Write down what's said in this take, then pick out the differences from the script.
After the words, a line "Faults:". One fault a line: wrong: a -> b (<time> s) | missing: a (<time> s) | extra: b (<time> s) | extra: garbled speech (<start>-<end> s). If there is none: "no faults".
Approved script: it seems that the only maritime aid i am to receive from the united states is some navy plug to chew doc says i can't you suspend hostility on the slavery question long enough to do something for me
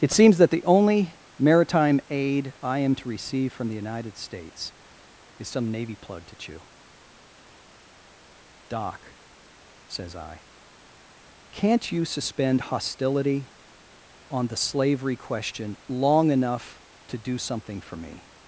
it seems that the only maritime aid i am to receive from the united states is some navy plug to chew doc says i can't you suspend hostility on the slavery question long enough to do something for me
Faults:
no faults